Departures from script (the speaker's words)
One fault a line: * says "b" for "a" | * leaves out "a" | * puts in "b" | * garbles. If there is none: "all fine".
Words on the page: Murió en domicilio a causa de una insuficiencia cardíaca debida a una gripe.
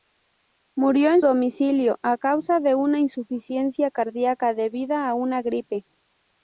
all fine